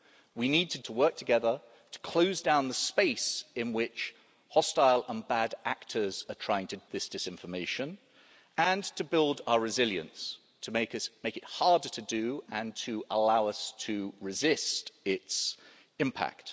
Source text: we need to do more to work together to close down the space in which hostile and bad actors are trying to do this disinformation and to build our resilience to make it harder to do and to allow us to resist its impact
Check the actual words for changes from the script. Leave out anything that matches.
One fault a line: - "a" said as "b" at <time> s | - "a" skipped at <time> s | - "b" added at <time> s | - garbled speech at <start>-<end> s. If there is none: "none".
- "do more" skipped at 0.8 s
- "do" skipped at 6.8 s